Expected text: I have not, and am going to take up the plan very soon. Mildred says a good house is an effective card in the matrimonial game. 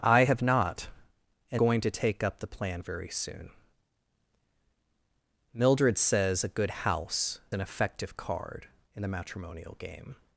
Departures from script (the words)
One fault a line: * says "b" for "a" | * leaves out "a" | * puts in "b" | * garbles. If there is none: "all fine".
* leaves out "am"
* leaves out "is"